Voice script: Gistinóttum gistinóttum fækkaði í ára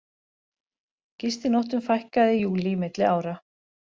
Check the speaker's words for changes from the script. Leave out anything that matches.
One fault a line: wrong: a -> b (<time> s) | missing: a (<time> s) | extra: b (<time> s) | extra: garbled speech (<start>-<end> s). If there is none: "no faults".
missing: gistinóttum (1.9 s)
extra: júlí milli (2.5 s)